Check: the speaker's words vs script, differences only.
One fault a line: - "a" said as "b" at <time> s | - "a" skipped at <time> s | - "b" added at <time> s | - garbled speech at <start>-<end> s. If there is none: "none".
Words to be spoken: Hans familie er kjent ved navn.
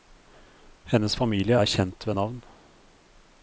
- "Hans" said as "Hennes" at 0.9 s